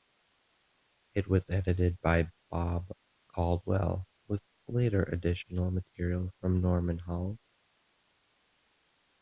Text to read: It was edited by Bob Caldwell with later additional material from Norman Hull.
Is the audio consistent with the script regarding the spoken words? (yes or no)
yes